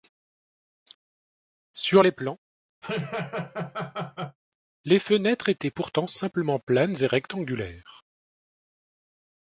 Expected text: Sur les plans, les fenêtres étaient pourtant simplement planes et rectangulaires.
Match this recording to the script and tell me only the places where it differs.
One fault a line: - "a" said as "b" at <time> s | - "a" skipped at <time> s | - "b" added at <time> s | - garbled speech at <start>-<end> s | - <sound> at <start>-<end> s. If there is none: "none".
- laugh at 2.8-4.4 s